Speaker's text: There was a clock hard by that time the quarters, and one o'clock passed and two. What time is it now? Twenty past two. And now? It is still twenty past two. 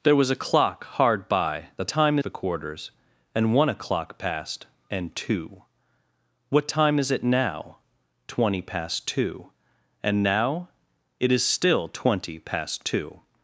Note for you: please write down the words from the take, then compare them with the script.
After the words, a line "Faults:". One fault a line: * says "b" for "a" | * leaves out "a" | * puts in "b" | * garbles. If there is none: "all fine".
There was a clock hard by that time the quarters, and one o'clock passed and two. What time is it now? Twenty past two. And now? It is still twenty past two.
Faults:
all fine